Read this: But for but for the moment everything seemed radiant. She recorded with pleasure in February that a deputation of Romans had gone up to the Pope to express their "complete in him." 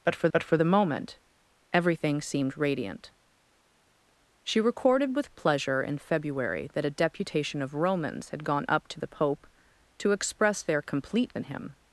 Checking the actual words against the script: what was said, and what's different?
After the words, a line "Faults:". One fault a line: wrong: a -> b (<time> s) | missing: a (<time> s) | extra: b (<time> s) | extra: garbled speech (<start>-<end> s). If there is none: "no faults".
But for but for the moment everything seemed radiant. She recorded with pleasure in February that a deputation of Romans had gone up to the Pope to express their "complete in him."
Faults:
no faults